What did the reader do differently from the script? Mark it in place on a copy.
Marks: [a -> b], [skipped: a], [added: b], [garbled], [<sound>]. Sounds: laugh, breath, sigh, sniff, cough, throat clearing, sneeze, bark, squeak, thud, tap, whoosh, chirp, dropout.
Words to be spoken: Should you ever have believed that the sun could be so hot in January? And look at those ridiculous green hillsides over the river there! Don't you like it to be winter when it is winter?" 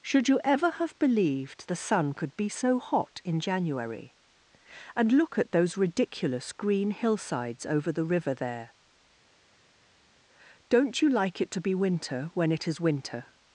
Should you ever have believed [skipped: that] the sun could be so hot in January? And look at those ridiculous green hillsides over the river there! Don't you like it to be winter when it is winter?"